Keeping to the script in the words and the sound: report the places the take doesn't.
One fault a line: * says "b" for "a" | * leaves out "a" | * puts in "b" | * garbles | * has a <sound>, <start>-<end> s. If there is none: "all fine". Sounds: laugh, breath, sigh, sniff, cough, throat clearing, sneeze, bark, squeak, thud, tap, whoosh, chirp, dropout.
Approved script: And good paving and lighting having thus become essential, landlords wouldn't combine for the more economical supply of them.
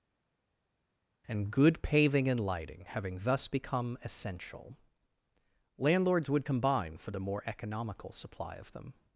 * says "would" for "wouldn't"